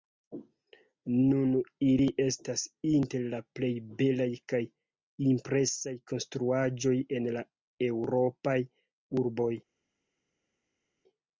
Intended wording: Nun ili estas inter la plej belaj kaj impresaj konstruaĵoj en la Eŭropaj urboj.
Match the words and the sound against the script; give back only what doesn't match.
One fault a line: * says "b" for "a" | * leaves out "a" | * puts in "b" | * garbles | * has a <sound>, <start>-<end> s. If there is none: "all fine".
all fine